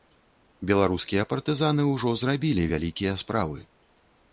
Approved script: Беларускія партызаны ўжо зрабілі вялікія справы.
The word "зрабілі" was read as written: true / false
true